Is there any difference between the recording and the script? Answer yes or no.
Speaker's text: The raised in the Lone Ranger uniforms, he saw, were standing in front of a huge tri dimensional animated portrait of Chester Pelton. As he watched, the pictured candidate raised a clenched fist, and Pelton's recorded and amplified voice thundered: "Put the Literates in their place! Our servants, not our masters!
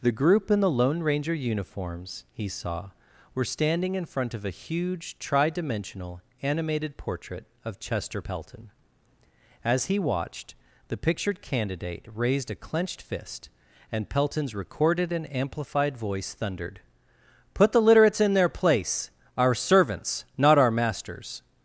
yes